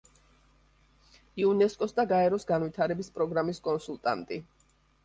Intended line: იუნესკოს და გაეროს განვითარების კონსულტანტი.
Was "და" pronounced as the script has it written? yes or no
yes